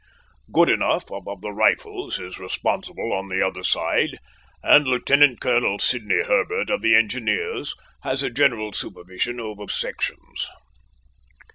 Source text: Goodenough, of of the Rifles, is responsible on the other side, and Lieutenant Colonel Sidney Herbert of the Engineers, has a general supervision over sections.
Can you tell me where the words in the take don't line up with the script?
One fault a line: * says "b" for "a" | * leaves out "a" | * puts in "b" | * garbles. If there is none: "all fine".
all fine